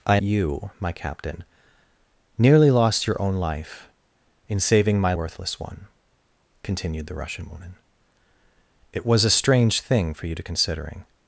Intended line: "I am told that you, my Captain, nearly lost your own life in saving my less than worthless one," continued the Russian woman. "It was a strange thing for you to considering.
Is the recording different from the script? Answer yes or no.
yes